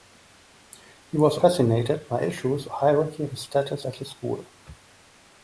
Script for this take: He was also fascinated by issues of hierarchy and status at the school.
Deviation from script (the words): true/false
true